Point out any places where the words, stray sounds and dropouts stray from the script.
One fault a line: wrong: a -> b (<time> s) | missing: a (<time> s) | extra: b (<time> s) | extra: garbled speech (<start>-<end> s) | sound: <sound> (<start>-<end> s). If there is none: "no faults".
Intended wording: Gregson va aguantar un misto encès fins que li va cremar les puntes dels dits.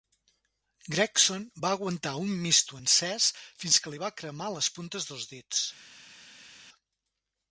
no faults